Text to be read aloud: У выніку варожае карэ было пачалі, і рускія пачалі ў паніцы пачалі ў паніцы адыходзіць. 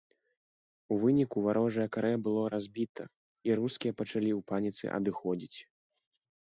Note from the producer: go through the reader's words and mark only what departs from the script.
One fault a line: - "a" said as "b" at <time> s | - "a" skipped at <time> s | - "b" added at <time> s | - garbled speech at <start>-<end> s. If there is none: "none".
- "пачалі" said as "разбіта" at 2.5 s
- "пачалі ў паніцы" skipped at 4.8 s